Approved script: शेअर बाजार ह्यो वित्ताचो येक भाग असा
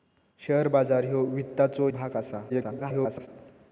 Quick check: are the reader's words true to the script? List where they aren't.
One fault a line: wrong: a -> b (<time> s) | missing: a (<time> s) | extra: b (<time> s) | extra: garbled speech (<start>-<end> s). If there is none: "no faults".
missing: येक (1.9 s)
extra: garbled speech (2.5-3.3 s)